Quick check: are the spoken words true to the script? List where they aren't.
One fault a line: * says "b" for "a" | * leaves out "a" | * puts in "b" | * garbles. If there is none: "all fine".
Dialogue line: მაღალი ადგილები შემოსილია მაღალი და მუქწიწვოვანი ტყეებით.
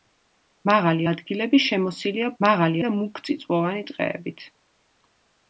all fine